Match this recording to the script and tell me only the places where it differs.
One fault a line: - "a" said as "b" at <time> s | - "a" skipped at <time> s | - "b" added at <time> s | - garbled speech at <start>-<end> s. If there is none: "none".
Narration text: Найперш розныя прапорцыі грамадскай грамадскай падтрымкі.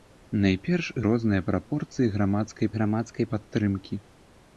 none